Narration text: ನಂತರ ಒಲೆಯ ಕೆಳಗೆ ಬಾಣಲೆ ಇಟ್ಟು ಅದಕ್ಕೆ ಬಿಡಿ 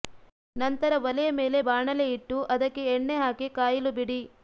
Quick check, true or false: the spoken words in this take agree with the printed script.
false